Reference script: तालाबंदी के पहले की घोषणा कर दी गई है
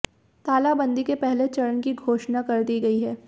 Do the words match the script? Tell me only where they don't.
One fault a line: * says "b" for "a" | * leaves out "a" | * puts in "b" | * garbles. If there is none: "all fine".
* puts in "चरण"